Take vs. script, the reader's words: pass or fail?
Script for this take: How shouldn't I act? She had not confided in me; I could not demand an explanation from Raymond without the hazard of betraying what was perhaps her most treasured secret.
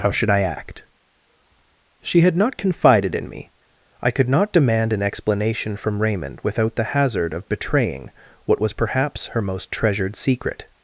fail